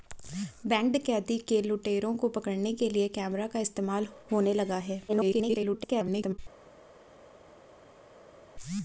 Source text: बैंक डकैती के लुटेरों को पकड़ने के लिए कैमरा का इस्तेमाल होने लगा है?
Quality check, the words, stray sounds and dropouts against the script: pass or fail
fail